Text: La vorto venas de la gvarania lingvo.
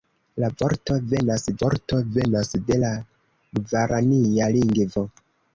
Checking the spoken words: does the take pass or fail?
fail